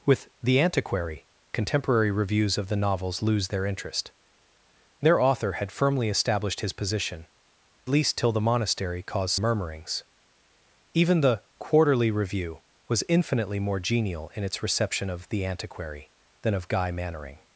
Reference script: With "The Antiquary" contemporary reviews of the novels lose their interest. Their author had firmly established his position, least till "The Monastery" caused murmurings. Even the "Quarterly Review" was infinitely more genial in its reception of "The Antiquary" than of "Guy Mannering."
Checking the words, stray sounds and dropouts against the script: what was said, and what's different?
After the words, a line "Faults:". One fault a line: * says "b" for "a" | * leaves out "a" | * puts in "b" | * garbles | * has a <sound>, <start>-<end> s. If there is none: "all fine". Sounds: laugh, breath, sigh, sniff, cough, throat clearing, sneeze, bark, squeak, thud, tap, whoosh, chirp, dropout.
With "The Antiquary" contemporary reviews of the novels lose their interest. Their author had firmly established his position, least till "The Monastery" caused murmurings. Even the "Quarterly Review" was infinitely more genial in its reception of "The Antiquary" than of "Guy Mannering."
Faults:
all fine